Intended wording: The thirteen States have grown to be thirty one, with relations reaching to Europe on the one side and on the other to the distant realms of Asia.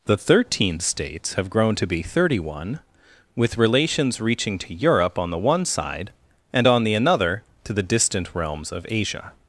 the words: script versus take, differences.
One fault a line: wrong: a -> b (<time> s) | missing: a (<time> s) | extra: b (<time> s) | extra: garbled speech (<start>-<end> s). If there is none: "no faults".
wrong: other -> another (6.9 s)